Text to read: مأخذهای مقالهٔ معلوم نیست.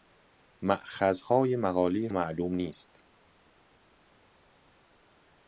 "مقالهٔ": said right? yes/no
yes